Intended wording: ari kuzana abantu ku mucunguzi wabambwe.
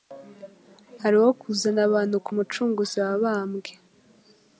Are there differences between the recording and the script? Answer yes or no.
yes